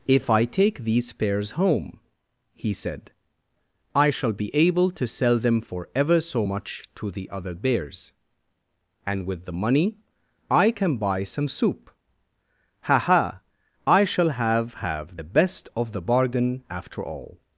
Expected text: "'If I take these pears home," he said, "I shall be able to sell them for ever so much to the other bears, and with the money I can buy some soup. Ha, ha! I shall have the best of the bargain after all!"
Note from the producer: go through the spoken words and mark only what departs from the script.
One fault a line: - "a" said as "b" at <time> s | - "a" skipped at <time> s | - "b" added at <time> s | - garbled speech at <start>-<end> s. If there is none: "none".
- "have" added at 14.7 s